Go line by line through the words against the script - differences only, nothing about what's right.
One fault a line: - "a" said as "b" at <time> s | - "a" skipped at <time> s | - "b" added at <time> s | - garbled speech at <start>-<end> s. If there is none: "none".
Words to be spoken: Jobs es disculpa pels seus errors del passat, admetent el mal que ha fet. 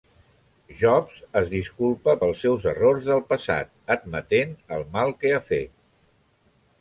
none